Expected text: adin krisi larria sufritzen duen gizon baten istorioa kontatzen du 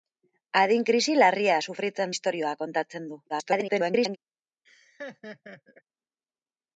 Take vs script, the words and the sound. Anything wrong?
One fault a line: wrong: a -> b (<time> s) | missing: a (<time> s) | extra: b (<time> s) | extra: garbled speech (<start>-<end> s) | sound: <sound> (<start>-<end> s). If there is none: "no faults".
missing: duen gizon baten (2.2 s)
extra: garbled speech (3.3-4.2 s)
sound: laugh (4.6-5.8 s)